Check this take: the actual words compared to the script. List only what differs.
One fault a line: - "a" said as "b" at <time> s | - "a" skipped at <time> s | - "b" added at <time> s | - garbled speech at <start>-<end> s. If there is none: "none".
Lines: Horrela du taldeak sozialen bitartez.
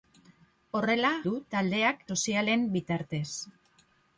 none